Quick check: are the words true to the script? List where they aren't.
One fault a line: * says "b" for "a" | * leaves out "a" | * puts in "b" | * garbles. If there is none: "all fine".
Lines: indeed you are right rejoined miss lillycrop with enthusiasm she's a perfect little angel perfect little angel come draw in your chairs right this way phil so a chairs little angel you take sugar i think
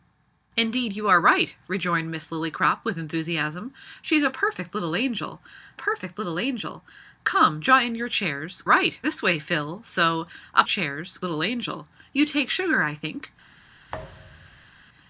all fine